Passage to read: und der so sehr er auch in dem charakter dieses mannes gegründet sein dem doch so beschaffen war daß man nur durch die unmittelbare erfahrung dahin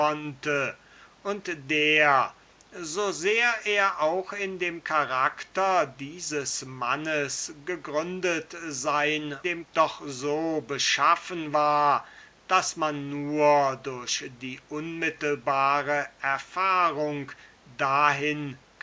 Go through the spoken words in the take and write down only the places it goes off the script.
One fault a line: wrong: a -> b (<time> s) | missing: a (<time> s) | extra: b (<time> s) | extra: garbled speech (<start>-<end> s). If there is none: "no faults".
no faults